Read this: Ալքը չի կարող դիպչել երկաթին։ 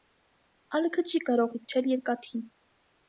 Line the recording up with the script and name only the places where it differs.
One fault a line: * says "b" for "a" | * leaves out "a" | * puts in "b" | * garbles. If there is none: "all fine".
all fine